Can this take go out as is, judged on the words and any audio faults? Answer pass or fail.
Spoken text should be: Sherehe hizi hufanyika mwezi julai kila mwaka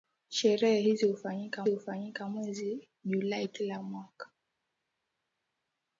fail